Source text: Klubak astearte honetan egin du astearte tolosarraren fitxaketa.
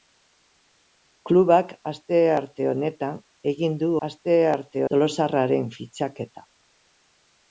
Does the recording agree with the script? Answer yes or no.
yes